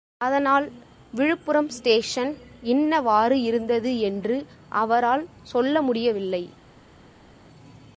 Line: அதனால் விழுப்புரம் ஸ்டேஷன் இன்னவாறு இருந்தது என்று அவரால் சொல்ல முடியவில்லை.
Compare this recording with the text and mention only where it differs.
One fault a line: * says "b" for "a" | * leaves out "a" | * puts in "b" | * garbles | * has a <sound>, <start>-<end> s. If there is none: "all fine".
all fine